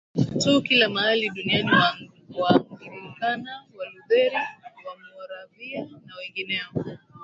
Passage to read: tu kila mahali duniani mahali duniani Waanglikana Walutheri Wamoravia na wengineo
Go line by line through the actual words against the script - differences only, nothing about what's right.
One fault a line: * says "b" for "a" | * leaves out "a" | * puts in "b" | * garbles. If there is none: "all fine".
* leaves out "mahali duniani"